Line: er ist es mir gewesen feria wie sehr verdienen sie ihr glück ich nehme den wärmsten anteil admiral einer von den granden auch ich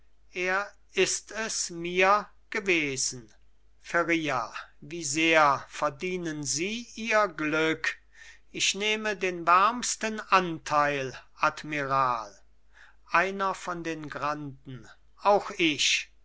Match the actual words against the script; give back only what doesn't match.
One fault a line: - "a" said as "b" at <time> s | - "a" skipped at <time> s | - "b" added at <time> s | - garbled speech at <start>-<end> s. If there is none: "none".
none